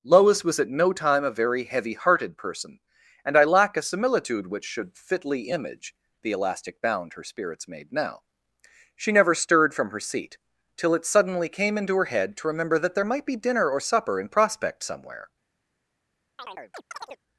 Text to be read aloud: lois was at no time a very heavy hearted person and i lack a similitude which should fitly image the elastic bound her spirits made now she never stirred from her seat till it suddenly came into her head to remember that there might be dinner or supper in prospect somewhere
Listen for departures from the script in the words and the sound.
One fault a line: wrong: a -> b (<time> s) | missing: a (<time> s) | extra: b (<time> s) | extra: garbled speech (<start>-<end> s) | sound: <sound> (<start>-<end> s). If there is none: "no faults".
sound: chirp (16.4-17.2 s)